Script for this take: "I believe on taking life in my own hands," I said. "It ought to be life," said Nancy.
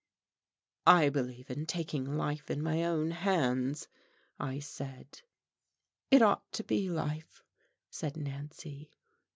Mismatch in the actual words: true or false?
true